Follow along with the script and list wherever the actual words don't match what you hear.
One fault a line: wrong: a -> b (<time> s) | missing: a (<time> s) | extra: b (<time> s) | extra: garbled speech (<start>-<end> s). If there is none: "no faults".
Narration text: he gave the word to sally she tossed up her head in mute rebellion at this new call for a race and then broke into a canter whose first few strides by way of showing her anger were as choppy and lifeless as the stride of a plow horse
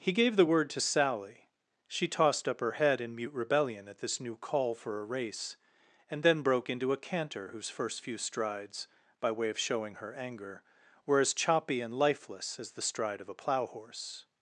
no faults